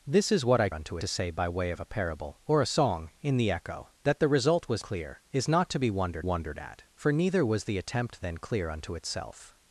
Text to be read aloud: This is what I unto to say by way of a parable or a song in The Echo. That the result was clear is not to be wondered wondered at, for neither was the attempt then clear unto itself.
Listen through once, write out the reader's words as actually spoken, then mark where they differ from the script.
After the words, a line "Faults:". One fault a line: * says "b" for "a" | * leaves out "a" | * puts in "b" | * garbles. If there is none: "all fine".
This is what I unto to say by way of a parable or a song in The Echo. That the result was clear is not to be wondered wondered at, for neither was the attempt then clear unto itself.
Faults:
all fine